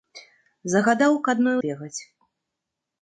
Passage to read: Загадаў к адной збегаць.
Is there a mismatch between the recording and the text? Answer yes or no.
no